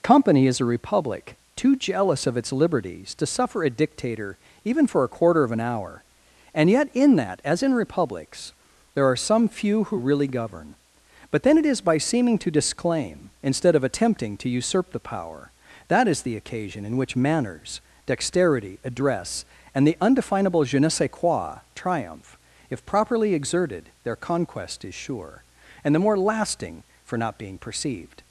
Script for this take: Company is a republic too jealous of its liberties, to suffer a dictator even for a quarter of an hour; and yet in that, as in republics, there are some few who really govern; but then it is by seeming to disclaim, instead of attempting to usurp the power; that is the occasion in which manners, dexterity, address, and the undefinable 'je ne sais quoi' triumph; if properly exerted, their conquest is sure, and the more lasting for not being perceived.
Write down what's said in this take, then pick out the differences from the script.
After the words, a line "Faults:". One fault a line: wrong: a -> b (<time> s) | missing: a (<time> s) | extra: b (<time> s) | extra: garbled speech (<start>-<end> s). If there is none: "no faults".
Company is a republic too jealous of its liberties, to suffer a dictator even for a quarter of an hour; and yet in that, as in republics, there are some few who really govern; but then it is by seeming to disclaim, instead of attempting to usurp the power; that is the occasion in which manners, dexterity, address, and the undefinable 'je ne sais quoi' triumph; if properly exerted, their conquest is sure, and the more lasting for not being perceived.
Faults:
no faults